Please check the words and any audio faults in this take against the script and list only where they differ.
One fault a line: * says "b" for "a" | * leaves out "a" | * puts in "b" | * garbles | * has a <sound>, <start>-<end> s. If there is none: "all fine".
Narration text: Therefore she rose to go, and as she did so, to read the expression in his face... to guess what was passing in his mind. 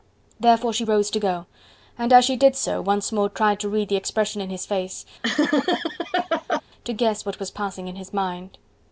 * puts in "once more tried"
* has a laugh, 5.2-6.6 s